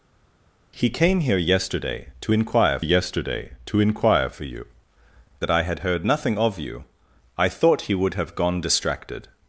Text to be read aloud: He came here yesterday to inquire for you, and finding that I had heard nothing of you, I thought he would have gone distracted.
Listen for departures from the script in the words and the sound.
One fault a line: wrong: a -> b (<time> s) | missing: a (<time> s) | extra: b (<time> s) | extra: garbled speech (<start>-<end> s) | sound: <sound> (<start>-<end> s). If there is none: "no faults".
extra: yesterday to inquire (2.8 s)
missing: and finding (4.7 s)